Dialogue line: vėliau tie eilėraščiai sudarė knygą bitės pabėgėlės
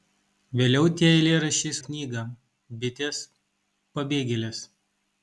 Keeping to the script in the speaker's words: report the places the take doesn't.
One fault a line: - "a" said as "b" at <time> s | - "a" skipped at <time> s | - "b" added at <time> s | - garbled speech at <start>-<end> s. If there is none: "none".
- "sudarė" skipped at 1.8 s